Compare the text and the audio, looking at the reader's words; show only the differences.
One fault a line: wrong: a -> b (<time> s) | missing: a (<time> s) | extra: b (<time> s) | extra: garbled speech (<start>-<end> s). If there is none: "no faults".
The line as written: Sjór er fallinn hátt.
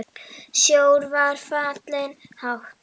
wrong: er -> var (1.1 s)